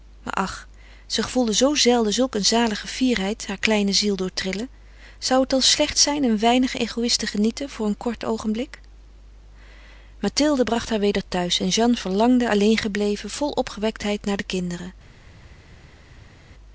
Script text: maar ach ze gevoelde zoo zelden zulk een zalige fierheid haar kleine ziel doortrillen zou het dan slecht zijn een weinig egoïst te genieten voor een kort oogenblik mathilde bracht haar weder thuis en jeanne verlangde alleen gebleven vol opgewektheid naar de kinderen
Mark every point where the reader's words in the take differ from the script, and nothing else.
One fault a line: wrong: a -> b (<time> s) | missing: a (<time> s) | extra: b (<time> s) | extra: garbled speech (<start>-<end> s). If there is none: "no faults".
no faults